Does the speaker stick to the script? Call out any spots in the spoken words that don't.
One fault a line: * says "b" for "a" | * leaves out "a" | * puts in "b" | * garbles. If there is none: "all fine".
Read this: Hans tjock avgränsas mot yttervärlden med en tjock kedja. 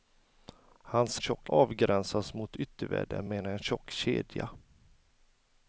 all fine